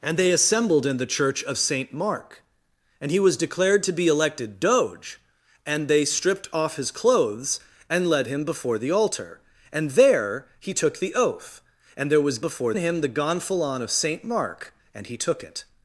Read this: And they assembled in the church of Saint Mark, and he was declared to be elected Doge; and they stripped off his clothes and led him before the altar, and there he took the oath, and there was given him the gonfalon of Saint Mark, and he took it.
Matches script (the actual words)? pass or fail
fail